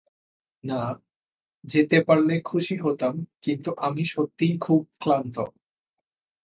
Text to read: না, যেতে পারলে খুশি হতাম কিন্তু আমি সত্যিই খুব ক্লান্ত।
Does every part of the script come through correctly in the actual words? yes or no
yes